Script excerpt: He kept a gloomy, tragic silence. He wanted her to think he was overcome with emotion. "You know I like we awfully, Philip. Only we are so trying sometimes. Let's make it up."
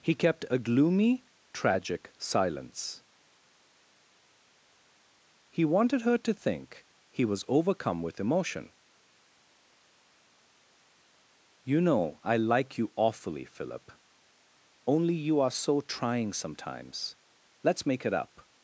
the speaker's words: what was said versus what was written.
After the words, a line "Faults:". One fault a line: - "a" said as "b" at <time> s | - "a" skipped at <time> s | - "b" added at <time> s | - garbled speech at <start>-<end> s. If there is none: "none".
He kept a gloomy, tragic silence. He wanted her to think he was overcome with emotion. "You know I like you awfully, Philip. Only you are so trying sometimes. Let's make it up."
Faults:
- "we" said as "you" at 12.8 s
- "we" said as "you" at 15.1 s